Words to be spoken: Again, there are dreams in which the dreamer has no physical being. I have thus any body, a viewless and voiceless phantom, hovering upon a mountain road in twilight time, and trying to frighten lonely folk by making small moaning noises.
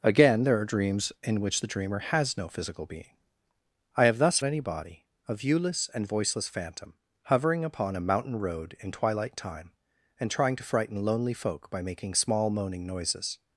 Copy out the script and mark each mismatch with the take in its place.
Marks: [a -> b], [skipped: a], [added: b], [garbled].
Again, there are dreams in which the dreamer has no physical being. I have thus any body, a viewless and voiceless phantom, hovering upon a mountain road in twilight time, and trying to frighten lonely folk by making small moaning noises.